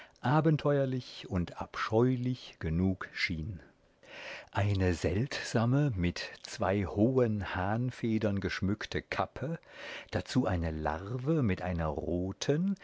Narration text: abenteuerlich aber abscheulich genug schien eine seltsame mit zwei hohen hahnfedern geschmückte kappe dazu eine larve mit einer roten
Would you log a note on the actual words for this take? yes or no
yes